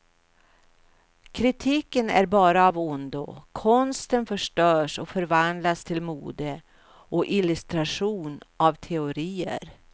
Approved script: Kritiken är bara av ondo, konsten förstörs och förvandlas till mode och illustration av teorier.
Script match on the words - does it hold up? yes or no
yes